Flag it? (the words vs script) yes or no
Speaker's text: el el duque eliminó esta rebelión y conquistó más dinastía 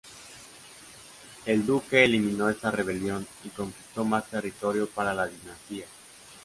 yes